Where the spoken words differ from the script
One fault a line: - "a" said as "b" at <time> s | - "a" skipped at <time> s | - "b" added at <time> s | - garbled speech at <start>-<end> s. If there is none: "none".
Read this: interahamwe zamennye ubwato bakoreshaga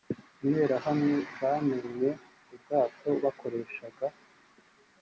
none